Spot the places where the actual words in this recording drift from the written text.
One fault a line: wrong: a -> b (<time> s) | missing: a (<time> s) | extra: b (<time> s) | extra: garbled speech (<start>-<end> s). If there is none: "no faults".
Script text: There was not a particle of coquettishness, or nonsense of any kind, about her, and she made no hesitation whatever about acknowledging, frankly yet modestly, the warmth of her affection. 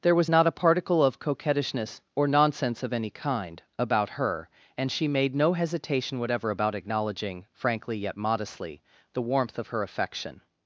no faults